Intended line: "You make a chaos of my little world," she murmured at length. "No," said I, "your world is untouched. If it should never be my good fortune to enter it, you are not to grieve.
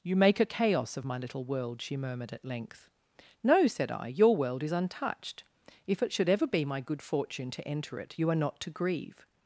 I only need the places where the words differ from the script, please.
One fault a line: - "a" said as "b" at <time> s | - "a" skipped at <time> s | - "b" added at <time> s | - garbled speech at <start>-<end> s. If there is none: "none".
- "never" said as "ever" at 6.3 s